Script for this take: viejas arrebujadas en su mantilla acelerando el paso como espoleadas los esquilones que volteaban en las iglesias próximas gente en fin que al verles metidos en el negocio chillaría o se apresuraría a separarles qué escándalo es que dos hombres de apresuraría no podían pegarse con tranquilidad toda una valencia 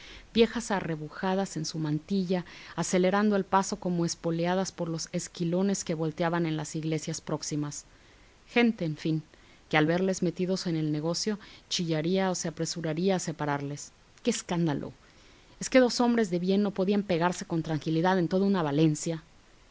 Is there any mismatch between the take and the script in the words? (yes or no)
yes